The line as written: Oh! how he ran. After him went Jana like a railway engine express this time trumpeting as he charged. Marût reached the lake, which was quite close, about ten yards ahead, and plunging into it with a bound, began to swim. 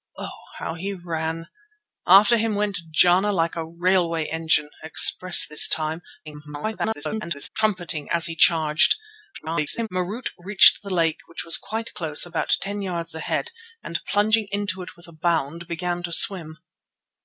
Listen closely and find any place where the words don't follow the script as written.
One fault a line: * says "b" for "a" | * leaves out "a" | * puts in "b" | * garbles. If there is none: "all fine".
* garbles
* garbles